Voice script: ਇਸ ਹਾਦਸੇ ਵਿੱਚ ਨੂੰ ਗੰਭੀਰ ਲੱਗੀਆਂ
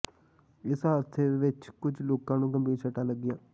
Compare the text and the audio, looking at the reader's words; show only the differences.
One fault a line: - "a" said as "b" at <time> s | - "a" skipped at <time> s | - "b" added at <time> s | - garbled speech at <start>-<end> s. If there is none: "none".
- "ਕੁਝ ਲੋਕਾਂ" added at 1.8 s
- "ਸੱਟਾਂ" added at 2.8 s